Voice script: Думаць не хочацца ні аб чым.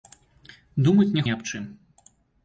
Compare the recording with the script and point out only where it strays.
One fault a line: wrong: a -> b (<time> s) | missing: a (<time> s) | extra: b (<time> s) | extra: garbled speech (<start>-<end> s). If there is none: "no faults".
missing: хочацца (1.2 s)